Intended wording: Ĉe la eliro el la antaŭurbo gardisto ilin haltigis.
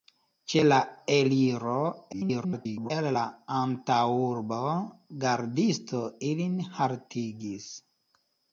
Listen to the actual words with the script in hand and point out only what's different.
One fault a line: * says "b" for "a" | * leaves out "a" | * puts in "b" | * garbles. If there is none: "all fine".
* garbles